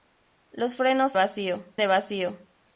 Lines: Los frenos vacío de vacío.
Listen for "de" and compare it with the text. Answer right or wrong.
right